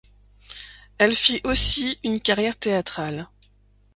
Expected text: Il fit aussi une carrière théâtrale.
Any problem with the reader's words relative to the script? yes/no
yes